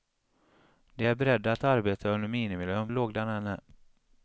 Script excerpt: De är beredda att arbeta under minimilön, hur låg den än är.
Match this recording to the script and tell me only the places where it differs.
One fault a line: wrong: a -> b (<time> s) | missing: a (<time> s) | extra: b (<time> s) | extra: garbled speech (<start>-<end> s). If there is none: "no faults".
missing: hur (2.9 s)